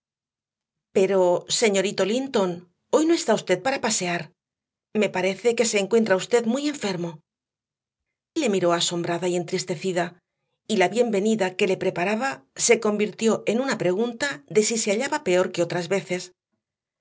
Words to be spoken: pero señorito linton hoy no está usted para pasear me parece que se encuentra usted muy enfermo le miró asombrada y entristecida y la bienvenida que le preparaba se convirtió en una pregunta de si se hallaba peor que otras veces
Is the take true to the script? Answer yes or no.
yes